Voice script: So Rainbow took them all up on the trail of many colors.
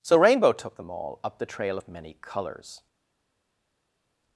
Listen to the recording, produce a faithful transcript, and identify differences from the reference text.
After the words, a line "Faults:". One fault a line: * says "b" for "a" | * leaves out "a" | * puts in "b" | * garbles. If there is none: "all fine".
So Rainbow took them all up the trail of many colors.
Faults:
* leaves out "on"